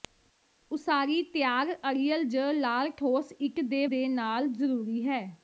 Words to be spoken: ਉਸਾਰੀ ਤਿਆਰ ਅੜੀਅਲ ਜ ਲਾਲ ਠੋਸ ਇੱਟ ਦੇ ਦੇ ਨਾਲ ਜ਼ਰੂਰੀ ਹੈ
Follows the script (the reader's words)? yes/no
yes